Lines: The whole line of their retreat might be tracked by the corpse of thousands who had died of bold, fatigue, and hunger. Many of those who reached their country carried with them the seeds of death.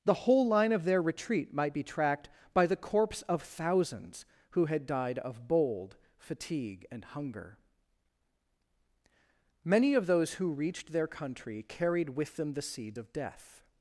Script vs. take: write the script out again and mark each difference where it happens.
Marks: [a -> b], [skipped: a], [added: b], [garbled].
The whole line of their retreat might be tracked by the corpse of thousands who had died of bold, fatigue, and hunger. Many of those who reached their country carried with them the seeds of death.